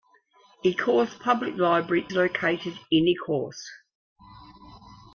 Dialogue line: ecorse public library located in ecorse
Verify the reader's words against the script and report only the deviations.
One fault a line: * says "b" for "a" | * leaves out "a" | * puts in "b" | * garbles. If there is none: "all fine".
all fine